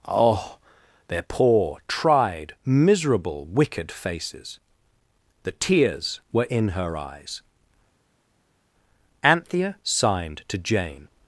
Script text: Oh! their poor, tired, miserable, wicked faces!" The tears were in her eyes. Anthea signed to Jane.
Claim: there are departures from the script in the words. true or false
true